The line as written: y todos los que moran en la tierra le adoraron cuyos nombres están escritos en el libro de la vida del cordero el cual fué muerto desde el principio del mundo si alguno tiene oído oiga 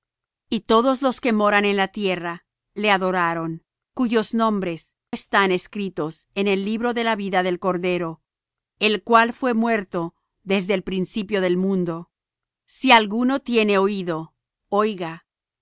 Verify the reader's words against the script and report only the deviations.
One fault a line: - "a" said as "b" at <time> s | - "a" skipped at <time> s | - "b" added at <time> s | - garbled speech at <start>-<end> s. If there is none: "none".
none